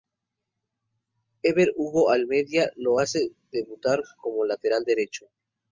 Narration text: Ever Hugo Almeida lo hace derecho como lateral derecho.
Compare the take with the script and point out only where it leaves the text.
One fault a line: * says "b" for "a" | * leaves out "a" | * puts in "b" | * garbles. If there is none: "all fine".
* says "debutar" for "derecho"